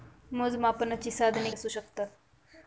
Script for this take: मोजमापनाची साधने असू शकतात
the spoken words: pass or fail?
pass